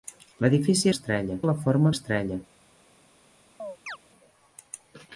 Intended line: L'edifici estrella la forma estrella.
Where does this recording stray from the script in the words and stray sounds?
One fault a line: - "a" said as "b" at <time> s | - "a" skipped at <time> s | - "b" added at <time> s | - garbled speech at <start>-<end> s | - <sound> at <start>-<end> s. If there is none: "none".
- chirp at 3.6-4.0 s